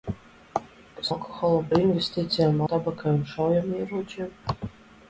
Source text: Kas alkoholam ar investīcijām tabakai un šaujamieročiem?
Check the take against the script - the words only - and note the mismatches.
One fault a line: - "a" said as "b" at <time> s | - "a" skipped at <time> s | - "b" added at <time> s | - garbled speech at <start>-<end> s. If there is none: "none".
none